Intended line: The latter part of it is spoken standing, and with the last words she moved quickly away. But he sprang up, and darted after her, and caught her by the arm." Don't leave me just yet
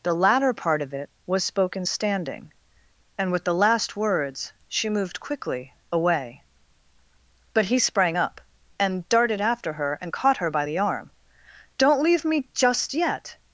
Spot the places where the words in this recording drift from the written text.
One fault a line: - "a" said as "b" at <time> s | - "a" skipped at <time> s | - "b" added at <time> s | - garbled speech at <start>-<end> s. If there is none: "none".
- "is" said as "was" at 1.3 s